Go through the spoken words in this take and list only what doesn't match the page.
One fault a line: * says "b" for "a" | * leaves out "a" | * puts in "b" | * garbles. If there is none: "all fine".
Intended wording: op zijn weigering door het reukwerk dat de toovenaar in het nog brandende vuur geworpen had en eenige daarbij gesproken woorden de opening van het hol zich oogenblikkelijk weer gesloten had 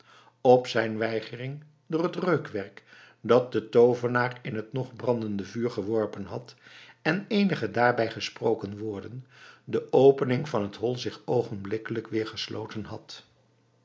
all fine